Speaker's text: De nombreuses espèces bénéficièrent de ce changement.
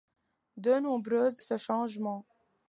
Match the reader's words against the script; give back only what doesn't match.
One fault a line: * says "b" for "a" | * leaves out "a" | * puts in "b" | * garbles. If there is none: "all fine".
* leaves out "espèces bénéficièrent de"